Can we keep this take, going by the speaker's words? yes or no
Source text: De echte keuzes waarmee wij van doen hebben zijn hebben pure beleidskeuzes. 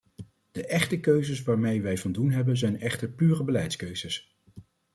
no